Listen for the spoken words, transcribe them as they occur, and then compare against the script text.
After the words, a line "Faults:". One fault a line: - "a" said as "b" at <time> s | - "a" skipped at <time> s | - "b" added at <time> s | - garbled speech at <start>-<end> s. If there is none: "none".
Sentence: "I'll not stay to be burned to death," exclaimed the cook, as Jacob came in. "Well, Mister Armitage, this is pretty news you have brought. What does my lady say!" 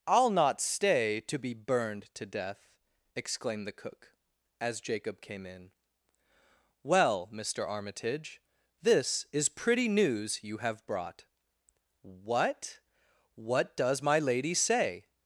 "I'll not stay to be burned to death," exclaimed the cook, as Jacob came in. "Well, Mister Armitage, this is pretty news you have brought. What What does my lady say!"
Faults:
- "What" added at 13.3 s